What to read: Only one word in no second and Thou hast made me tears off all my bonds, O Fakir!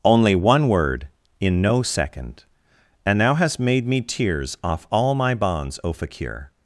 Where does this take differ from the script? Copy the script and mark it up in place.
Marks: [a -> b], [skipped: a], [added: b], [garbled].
Only one word in no second and Thou hast made me tears off all my bonds, O Fakir!